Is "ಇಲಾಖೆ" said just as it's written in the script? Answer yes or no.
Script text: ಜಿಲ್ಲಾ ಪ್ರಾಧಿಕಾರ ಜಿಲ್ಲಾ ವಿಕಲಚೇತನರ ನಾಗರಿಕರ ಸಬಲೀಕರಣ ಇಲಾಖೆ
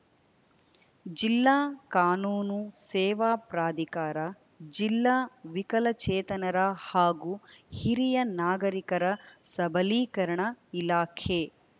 yes